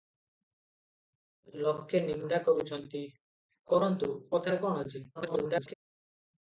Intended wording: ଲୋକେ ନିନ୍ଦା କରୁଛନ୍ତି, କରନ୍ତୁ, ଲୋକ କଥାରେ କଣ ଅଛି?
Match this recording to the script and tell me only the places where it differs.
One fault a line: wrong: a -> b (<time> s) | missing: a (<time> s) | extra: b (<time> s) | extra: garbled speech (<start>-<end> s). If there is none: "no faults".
missing: ଲୋକ (4.1 s)
extra: garbled speech (5.2-5.7 s)